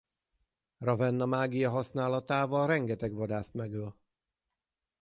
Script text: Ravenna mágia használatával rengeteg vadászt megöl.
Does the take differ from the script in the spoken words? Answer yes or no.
no